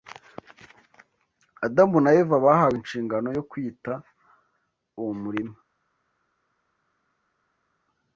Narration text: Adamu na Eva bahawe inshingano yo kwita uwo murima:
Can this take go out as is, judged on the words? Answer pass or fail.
pass